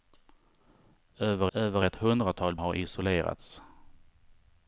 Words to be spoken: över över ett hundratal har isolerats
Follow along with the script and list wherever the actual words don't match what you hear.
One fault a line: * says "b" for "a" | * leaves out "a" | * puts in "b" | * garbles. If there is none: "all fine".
all fine